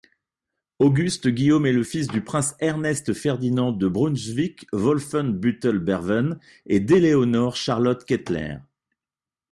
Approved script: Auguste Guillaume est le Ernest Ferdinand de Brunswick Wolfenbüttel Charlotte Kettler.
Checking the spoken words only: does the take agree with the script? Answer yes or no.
no